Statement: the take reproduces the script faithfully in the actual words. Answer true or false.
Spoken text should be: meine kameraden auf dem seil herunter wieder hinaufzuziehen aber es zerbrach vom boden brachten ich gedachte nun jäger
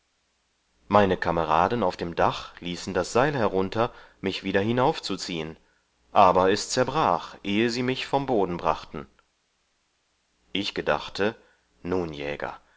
false